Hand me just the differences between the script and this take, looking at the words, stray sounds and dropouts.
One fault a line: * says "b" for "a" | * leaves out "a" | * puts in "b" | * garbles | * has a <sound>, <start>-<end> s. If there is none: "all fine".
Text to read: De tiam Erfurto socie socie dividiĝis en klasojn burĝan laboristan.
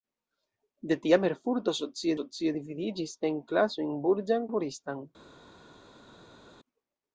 all fine